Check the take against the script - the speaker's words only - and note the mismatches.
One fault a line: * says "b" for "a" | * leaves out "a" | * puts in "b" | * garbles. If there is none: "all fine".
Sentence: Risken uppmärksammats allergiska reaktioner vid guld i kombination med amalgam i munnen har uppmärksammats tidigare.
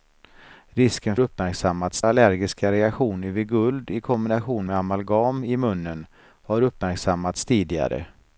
all fine